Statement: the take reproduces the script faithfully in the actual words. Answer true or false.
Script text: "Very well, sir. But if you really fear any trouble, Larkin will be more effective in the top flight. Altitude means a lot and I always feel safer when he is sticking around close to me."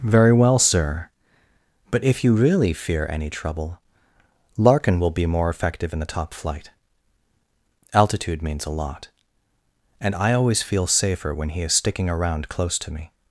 true